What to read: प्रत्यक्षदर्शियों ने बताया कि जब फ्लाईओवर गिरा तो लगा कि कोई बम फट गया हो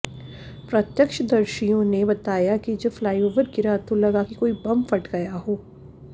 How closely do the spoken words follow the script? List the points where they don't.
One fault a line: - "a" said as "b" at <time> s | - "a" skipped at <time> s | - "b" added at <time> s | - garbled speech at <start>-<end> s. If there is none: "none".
none